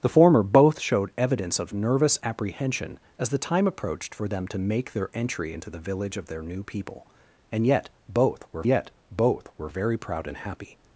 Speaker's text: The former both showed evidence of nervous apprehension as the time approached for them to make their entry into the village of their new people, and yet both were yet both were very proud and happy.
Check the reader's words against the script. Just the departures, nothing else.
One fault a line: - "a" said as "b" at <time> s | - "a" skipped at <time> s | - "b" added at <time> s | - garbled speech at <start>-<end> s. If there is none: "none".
none